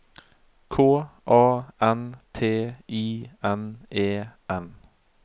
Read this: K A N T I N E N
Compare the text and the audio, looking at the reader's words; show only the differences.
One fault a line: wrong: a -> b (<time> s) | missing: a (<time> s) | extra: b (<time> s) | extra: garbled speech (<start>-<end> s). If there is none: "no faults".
no faults